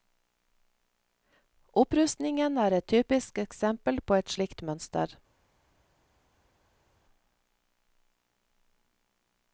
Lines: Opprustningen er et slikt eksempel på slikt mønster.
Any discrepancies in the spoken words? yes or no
yes